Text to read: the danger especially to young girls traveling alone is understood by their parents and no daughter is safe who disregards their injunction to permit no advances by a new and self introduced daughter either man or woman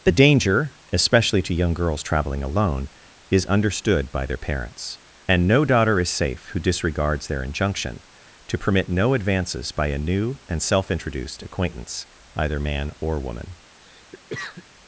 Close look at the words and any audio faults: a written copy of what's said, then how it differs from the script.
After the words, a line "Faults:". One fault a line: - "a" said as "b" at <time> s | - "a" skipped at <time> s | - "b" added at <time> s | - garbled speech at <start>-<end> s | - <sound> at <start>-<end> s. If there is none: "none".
the danger especially to young girls traveling alone is understood by their parents and no daughter is safe who disregards their injunction to permit no advances by a new and self introduced acquaintance either man or woman
Faults:
- "daughter" said as "acquaintance" at 11.4 s
- cough at 13.8-14.7 s